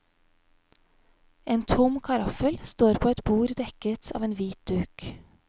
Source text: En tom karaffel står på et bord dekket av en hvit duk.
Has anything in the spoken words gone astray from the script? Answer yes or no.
no